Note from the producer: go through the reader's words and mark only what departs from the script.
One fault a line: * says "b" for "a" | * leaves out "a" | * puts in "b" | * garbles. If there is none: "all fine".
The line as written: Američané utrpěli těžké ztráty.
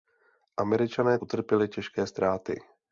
all fine